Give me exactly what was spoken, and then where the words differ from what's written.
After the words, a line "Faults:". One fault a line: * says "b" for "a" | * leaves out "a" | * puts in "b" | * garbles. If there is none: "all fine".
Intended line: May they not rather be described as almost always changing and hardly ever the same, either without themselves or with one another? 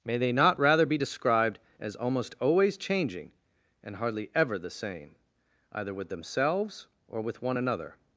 May they not rather be described as almost always changing and hardly ever the same, either with themselves or with one another?
Faults:
* says "with" for "without"